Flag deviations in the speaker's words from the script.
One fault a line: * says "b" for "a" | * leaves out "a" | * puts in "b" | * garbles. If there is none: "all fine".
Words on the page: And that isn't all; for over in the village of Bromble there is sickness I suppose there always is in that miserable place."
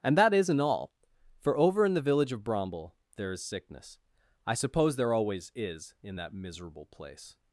all fine